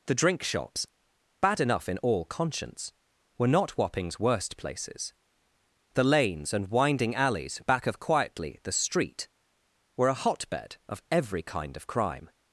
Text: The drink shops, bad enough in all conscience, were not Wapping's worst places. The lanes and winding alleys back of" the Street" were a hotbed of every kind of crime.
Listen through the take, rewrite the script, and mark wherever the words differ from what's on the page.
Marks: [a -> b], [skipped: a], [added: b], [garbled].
The drink shops, bad enough in all conscience, were not Wapping's worst places. The lanes and winding alleys back of" [added: quietly] the Street" were a hotbed of every kind of crime.